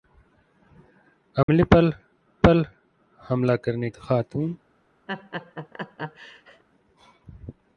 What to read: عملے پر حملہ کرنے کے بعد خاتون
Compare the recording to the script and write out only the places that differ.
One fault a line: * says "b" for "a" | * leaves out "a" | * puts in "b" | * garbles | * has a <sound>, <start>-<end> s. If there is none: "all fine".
* has a dropout, 1.4-1.5 s
* puts in "پر"
* leaves out "کے بعد"
* has a laugh, 5.1-6.6 s